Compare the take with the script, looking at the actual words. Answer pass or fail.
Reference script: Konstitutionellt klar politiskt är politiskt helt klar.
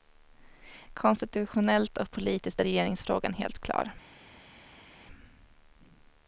fail